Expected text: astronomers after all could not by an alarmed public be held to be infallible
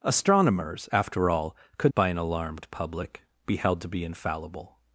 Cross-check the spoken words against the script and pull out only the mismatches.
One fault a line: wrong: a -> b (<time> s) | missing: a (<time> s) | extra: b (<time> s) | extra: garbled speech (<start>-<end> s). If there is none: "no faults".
missing: not (1.9 s)